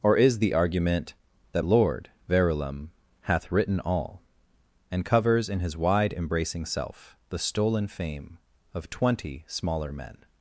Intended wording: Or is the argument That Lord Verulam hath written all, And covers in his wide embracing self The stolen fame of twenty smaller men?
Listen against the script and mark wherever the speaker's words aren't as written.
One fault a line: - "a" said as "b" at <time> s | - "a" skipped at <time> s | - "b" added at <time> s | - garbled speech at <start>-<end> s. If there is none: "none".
none